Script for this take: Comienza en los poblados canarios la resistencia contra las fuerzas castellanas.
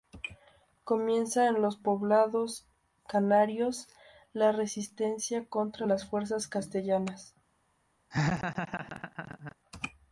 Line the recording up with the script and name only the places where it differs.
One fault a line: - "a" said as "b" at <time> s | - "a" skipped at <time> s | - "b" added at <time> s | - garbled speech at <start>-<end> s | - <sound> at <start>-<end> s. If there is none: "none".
- laugh at 8.1-9.6 s